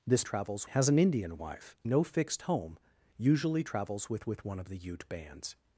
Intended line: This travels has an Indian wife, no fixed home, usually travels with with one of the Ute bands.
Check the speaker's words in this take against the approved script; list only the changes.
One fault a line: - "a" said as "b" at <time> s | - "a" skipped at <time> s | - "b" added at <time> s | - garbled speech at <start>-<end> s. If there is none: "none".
none